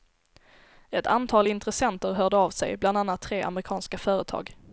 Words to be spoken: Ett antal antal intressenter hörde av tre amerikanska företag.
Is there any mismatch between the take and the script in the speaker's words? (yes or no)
yes